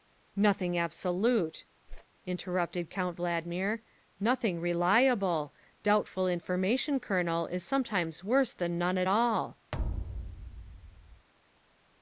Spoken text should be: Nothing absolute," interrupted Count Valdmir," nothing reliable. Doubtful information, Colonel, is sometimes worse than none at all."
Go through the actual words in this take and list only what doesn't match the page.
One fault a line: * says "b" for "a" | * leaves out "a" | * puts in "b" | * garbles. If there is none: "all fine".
all fine